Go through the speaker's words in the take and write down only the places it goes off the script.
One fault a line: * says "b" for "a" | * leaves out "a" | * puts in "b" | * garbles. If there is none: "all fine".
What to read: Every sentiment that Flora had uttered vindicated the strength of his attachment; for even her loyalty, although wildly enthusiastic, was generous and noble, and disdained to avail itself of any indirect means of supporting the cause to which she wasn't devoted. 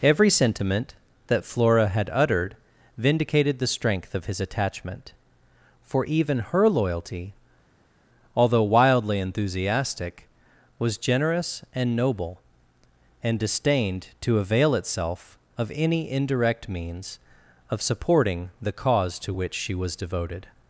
* says "was" for "wasn't"